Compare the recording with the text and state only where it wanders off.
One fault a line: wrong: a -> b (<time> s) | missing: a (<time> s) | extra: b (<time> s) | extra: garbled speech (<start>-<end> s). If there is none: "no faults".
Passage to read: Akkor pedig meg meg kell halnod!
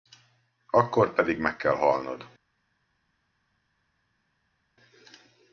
missing: meg (1.6 s)